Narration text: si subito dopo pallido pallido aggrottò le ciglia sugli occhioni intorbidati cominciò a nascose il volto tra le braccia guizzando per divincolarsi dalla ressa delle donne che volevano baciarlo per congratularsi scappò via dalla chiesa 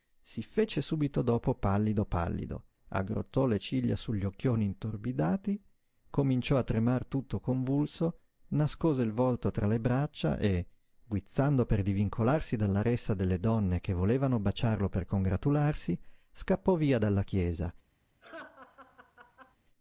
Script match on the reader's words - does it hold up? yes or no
no